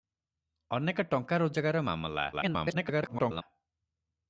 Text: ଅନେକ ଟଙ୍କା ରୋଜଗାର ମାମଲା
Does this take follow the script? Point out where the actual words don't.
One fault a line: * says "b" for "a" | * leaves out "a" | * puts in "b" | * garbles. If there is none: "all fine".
* garbles